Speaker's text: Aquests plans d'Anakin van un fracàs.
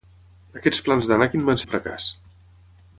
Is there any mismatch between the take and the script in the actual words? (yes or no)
no